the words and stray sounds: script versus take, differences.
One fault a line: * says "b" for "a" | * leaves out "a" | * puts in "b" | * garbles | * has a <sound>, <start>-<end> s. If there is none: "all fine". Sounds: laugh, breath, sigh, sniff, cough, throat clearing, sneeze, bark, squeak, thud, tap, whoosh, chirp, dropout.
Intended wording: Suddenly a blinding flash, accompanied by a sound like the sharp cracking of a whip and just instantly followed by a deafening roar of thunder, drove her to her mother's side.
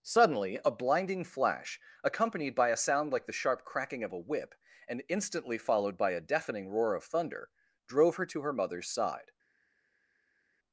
* leaves out "just"